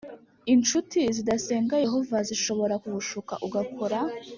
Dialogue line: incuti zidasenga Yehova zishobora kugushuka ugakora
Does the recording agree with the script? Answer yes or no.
yes